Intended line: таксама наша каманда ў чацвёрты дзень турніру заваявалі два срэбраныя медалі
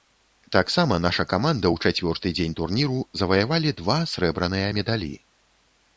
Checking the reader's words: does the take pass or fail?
pass